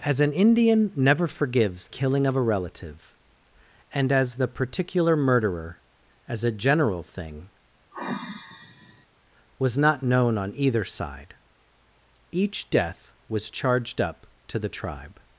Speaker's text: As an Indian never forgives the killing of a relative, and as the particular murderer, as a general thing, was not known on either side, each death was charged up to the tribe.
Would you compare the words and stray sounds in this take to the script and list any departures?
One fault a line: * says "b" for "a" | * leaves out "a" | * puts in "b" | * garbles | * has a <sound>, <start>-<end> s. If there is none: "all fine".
* leaves out "the"
* has a sigh, 7.9-9.1 s